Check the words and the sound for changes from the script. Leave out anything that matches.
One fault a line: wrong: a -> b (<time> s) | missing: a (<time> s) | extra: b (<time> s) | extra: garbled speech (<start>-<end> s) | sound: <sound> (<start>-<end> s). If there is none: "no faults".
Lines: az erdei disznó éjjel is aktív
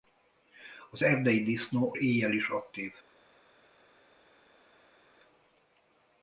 no faults